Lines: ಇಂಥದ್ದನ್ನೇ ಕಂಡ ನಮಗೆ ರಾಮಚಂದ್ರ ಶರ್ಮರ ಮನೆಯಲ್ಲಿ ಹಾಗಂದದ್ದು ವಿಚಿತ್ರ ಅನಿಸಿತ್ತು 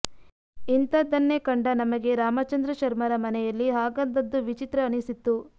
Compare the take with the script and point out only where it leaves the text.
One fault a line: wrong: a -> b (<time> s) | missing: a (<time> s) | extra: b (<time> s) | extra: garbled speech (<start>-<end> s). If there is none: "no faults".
no faults